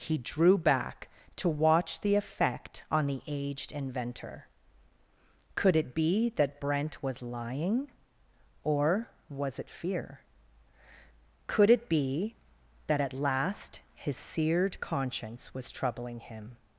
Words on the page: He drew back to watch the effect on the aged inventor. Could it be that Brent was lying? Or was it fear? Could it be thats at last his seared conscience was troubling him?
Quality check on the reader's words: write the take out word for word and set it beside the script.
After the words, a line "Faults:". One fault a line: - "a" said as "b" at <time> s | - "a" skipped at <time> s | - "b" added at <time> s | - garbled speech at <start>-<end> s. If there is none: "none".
He drew back to watch the effect on the aged inventor. Could it be that Brent was lying? Or was it fear? Could it be that at last his seared conscience was troubling him?
Faults:
- "thats" said as "that" at 12.9 s